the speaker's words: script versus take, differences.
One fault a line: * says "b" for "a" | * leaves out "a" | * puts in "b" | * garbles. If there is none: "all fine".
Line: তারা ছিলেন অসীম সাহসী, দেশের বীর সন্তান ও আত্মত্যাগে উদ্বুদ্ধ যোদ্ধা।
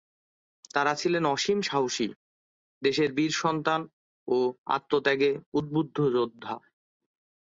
all fine